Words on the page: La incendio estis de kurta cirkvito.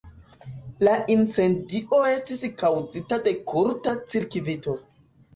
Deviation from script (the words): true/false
true